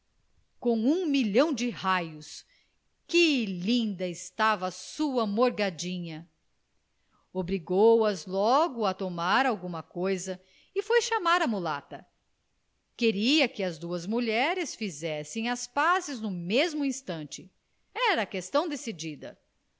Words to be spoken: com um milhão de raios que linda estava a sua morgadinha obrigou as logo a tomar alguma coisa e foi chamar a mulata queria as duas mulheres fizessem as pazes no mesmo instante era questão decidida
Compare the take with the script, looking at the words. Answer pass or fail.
fail